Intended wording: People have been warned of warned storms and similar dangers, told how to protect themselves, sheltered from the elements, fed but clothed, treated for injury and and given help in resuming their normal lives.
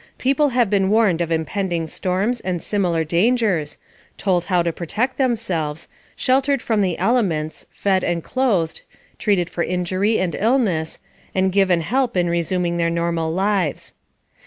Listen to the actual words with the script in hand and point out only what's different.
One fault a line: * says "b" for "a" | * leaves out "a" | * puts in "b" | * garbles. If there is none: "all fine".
* says "impending" for "warned"
* says "and" for "but"
* puts in "illness"